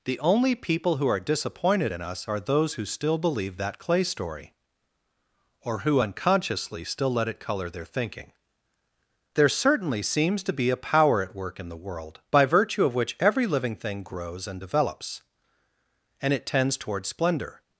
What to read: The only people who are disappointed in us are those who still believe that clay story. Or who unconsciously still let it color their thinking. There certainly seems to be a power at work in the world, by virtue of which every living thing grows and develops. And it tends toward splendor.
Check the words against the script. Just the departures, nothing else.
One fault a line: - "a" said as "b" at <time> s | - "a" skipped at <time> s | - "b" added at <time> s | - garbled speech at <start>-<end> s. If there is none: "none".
none